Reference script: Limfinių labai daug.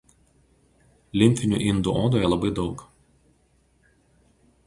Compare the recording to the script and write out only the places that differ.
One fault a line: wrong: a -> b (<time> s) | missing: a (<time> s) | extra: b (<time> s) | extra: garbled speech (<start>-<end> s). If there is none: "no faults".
extra: indų odoje (1.6 s)